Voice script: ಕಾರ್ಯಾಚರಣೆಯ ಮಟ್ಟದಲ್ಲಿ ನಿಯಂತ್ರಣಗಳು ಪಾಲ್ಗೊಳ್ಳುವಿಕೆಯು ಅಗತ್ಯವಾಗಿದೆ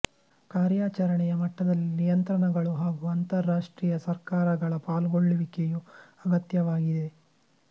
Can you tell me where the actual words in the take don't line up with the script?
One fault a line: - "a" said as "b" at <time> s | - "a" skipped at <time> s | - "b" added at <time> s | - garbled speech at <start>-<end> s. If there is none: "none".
- "ಹಾಗೂ ಅಂತರರಾಷ್ಟ್ರೀಯ ಸರ್ಕಾರಗಳ" added at 2.8 s